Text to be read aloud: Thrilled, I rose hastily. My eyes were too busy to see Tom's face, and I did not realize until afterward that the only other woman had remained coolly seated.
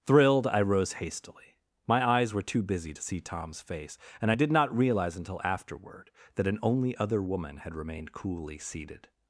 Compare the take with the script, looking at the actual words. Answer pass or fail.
fail